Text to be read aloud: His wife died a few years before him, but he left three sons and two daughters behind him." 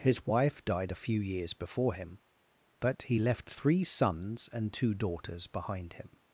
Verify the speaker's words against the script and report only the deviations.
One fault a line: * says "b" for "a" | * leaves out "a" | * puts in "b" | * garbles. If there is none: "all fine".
all fine